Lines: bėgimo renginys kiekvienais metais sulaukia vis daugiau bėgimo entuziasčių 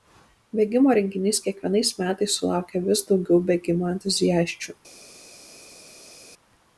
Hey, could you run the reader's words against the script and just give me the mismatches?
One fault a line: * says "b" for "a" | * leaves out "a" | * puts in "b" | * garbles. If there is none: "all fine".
all fine